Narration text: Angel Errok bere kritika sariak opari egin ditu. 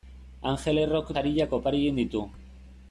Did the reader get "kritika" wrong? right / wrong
wrong